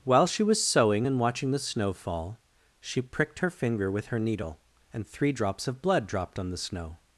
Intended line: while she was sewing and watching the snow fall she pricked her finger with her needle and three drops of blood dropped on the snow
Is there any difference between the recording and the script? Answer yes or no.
no